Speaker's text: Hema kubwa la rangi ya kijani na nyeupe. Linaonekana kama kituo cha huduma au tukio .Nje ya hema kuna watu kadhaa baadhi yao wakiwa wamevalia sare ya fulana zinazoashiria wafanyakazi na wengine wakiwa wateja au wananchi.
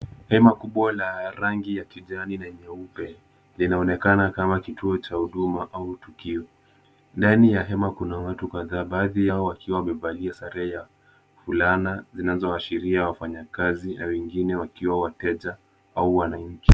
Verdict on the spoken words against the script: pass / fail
fail